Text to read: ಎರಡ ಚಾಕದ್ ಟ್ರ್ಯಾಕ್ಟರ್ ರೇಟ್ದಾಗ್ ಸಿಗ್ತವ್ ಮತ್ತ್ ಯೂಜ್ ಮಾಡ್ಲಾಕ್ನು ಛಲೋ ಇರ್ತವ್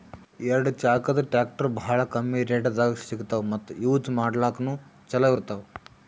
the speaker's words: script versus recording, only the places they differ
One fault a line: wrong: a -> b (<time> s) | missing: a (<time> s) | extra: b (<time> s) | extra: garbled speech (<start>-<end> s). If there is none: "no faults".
extra: ಭಾಳ್ ಕಮ್ಮಿ (1.8 s)